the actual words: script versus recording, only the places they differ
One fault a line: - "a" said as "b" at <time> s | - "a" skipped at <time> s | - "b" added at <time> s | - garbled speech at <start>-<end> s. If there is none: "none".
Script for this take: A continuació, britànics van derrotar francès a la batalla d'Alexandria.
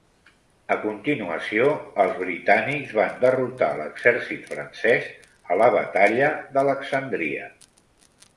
- "els" added at 2.0 s
- "l'exèrcit" added at 3.8 s